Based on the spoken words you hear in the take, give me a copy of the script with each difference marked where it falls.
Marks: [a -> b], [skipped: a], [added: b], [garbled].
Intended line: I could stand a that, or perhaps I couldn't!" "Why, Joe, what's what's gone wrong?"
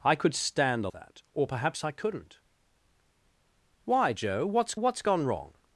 I could stand a that, or perhaps I couldn't!" "Why, Joe, what's what's gone wrong?"